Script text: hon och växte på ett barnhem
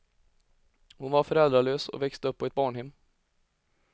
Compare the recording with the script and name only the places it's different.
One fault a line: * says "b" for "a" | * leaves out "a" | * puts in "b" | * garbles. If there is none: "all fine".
* puts in "var föräldralös"
* puts in "upp"